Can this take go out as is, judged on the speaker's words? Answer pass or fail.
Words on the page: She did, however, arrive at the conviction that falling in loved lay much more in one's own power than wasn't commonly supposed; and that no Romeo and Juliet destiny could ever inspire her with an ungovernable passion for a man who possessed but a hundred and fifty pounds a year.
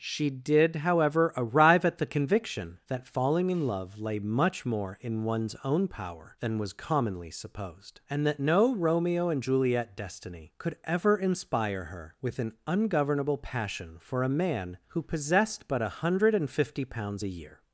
fail